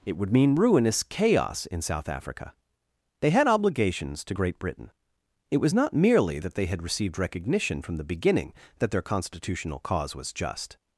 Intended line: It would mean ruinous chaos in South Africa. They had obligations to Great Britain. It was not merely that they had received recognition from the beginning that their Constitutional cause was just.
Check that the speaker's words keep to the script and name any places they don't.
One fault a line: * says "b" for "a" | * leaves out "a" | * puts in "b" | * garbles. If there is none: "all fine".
all fine